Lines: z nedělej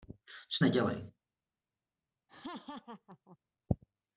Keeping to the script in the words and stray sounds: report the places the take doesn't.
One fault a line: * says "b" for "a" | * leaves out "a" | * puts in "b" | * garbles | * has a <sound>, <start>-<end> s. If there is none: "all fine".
* has a laugh, 2.3-3.4 s